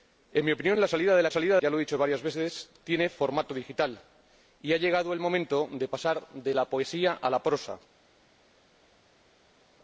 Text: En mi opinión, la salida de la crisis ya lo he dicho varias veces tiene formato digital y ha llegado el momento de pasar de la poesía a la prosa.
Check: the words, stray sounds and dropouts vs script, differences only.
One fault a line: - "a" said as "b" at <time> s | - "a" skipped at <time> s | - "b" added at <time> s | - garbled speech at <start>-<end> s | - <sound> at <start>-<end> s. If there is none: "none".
- "crisis" said as "salida" at 1.3 s